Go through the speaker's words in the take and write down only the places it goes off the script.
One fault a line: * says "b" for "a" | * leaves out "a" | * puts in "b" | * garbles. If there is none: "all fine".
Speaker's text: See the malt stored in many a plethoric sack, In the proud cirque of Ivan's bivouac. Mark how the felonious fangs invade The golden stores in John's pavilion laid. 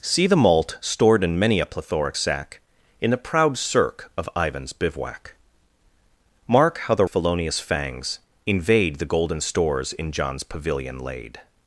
all fine